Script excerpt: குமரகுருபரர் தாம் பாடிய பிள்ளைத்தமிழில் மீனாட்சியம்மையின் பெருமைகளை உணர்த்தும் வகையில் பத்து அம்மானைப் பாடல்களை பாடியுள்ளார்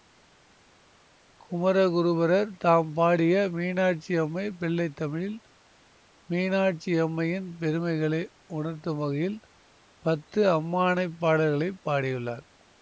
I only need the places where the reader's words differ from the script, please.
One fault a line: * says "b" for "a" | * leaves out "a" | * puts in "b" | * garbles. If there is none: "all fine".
* puts in "மீனாட்சியம்மை"